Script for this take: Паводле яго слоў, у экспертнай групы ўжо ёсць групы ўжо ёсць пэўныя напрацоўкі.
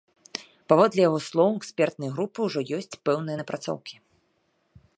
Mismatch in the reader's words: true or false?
true